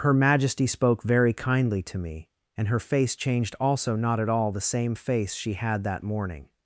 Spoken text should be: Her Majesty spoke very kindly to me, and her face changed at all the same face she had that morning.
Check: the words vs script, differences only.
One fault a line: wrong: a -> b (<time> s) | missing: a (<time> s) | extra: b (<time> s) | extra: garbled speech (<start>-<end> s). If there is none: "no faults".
extra: also not (3.6 s)